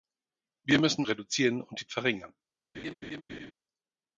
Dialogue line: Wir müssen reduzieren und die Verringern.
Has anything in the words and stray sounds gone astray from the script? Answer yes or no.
yes